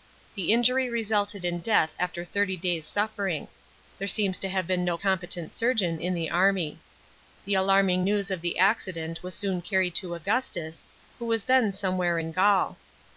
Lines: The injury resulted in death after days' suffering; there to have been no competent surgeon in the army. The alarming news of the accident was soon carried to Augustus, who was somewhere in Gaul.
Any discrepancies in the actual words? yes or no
yes